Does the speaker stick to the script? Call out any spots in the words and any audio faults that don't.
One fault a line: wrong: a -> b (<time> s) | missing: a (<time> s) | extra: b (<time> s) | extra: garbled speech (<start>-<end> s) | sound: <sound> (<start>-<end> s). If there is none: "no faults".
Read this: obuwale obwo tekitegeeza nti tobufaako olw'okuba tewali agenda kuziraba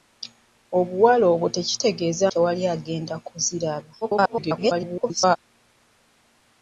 missing: nti tobufaako olw'okuba (2.2 s)
extra: garbled speech (4.0-5.4 s)